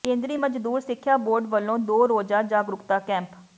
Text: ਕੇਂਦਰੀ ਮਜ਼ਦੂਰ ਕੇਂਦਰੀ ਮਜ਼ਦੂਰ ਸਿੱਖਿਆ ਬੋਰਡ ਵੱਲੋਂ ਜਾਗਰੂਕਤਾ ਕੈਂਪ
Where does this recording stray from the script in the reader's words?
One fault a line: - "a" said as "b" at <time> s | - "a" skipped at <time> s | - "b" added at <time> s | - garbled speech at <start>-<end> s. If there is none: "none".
- "ਕੇਂਦਰੀ ਮਜ਼ਦੂਰ" skipped at 0.8 s
- "ਦੋ ਰੋਜ਼ਾ" added at 1.8 s